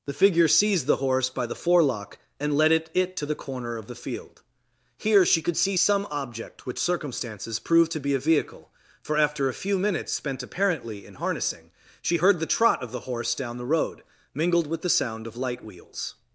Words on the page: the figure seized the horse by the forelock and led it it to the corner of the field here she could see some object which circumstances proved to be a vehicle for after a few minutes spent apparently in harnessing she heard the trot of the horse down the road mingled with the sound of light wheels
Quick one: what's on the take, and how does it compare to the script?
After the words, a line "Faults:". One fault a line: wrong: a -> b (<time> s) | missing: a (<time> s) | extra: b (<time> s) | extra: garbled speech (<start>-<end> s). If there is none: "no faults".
the figure seized the horse by the forelock and led it it to the corner of the field here she could see some object which circumstances proved to be a vehicle for after a few minutes spent apparently in harnessing she heard the trot of the horse down the road mingled with the sound of light wheels
Faults:
no faults